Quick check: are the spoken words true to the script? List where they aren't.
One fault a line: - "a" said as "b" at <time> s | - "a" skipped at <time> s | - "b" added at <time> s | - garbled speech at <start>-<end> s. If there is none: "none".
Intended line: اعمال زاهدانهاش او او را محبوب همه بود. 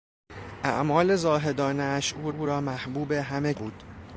none